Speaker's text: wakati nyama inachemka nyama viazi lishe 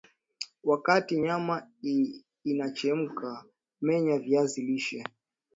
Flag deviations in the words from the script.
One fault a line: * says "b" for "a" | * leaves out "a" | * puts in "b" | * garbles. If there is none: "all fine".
* says "menya" for "nyama"